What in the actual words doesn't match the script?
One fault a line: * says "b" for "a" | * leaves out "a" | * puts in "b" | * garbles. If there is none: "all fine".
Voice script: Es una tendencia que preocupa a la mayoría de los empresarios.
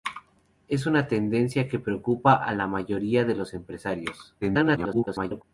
* garbles